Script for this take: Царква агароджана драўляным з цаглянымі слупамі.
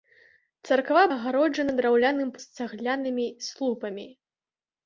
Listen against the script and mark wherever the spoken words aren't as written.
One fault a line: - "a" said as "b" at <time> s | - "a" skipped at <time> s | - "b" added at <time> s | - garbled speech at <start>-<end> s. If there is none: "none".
none